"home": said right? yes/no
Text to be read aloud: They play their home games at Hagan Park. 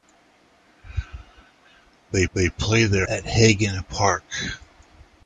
no